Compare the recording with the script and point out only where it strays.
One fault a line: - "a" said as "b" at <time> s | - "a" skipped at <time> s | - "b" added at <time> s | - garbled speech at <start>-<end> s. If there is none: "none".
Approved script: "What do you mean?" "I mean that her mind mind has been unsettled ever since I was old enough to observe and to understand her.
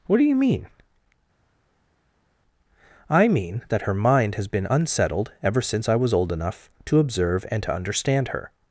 - "mind" skipped at 4.3 s